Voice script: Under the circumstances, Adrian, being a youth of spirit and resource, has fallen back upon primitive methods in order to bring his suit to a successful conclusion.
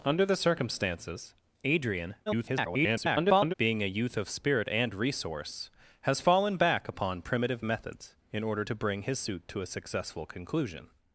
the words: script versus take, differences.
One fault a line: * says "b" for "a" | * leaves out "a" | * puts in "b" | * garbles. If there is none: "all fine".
* garbles